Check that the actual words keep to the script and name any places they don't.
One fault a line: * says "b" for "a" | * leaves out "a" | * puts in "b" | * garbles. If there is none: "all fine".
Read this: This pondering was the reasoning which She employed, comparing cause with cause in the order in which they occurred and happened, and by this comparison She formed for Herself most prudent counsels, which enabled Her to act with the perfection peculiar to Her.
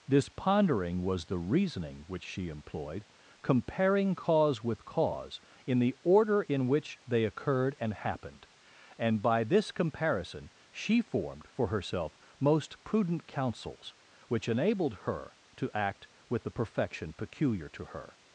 all fine